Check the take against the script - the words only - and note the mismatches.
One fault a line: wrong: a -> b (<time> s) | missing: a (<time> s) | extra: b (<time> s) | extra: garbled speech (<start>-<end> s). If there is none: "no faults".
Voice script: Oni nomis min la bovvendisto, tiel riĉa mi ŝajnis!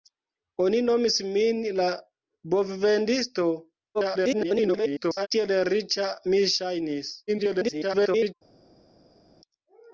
extra: garbled speech (3.9-5.3 s)
extra: garbled speech (7.3-8.3 s)